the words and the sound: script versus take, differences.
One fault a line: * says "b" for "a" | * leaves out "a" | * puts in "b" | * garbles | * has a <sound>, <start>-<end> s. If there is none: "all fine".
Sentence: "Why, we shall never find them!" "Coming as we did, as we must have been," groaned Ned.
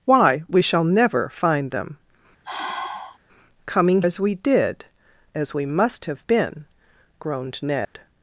* has a sigh, 2.4-3.2 s
* has a dropout, 7.8-7.9 s